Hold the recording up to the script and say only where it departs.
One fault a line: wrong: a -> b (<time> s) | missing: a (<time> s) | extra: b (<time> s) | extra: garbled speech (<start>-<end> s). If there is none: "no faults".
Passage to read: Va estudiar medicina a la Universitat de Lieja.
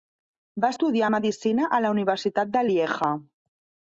no faults